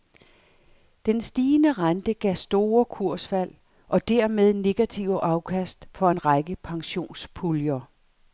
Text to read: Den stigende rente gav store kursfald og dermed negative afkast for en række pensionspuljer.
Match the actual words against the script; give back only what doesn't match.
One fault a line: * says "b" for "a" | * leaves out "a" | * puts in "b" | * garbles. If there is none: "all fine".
all fine